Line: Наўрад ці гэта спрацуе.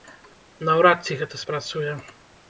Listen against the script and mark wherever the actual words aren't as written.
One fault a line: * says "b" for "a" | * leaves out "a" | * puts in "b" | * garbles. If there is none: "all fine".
all fine